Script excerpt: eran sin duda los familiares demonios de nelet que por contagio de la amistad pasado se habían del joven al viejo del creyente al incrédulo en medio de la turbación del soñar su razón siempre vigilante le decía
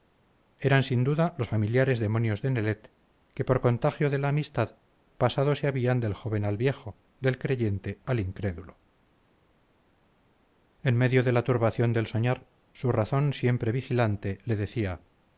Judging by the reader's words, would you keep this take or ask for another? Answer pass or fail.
pass